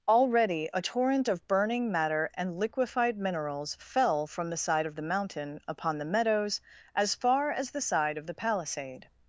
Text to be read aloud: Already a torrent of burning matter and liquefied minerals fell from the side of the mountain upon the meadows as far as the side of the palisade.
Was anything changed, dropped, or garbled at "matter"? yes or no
no